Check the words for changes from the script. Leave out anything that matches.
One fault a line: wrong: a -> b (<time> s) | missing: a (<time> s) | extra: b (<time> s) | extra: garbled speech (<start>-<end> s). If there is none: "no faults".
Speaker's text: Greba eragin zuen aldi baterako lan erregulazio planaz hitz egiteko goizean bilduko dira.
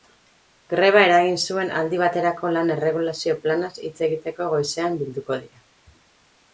no faults